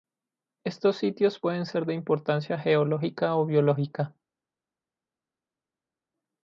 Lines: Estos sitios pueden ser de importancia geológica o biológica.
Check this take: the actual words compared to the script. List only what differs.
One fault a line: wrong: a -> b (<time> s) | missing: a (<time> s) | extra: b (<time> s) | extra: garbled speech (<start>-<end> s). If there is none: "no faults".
no faults